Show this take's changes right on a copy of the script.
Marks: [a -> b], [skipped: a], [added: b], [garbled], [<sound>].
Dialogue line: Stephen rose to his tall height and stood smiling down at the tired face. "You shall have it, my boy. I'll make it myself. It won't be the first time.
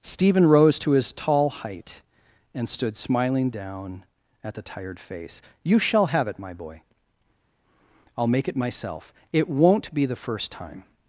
Stephen rose to his tall height and stood smiling down at the tired face. "You shall have it, my boy. I'll make it myself. It won't be the first time.